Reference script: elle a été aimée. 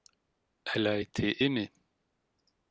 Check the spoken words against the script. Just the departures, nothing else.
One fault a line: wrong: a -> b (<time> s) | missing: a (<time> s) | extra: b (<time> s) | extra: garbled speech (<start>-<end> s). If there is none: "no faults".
no faults